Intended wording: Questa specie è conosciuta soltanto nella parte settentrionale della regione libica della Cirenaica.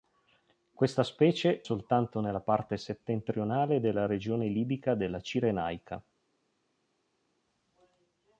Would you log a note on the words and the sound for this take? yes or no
yes